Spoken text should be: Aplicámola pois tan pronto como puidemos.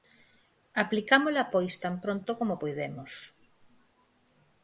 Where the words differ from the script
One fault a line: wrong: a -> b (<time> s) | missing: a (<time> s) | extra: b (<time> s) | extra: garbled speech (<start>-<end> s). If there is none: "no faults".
no faults